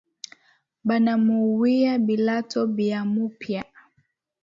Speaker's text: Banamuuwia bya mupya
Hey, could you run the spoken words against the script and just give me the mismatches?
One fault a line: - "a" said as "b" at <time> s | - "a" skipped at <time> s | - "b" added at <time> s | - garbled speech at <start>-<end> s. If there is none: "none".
- "bilato" added at 2.0 s